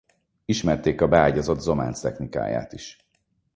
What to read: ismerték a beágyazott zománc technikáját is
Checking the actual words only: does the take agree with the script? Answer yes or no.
yes